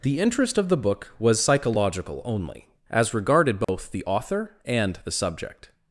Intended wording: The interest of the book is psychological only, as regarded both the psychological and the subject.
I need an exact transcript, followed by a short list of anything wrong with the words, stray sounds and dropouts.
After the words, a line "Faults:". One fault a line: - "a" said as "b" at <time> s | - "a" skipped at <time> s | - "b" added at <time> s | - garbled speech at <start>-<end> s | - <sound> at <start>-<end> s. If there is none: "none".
The interest of the book was psychological only, as regarded both the author and the subject.
Faults:
- "is" said as "was" at 1.2 s
- dropout at 3.6-3.7 s
- "psychological" said as "author" at 4.0 s